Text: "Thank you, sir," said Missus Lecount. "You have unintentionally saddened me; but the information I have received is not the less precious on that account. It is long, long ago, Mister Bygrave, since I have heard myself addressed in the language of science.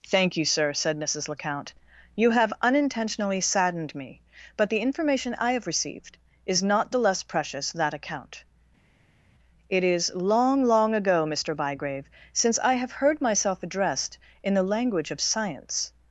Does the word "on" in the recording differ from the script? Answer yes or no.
yes